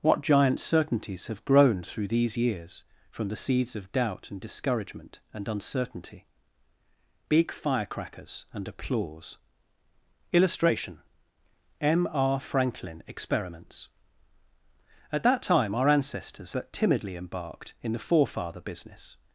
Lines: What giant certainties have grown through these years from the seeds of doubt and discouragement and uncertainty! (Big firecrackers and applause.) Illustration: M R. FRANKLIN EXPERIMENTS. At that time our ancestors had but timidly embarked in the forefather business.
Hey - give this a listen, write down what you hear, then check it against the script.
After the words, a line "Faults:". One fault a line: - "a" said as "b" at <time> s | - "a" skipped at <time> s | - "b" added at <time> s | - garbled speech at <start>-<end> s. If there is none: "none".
What giant certainties have grown through these years from the seeds of doubt and discouragement and uncertainty! (Big firecrackers and applause.) Illustration: M R. FRANKLIN EXPERIMENTS. At that time our ancestors but timidly embarked in the forefather business.
Faults:
- "had" skipped at 16.5 s